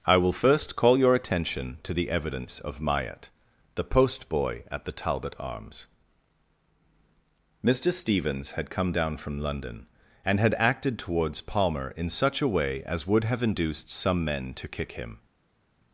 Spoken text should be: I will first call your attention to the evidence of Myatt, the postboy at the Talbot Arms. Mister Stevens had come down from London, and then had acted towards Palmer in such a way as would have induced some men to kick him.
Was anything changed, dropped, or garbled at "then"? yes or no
yes